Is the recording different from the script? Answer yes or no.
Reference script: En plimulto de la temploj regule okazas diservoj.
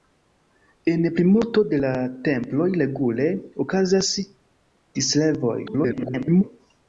yes